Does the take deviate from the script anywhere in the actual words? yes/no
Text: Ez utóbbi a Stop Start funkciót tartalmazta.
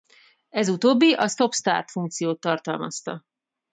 no